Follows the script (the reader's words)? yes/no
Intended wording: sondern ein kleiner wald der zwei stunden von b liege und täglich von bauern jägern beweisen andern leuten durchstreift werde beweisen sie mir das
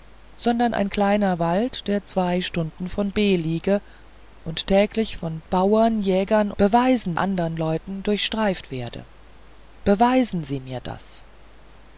yes